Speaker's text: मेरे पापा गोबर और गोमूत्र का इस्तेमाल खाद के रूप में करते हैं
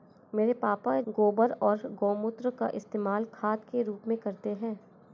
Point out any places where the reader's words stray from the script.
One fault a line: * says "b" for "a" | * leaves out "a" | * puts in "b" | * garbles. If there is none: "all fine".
all fine